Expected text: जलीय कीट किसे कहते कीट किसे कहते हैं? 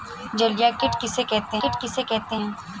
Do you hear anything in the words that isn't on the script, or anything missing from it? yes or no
no